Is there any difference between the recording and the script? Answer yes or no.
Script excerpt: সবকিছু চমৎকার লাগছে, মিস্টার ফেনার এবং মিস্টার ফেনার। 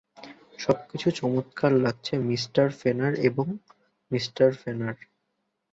no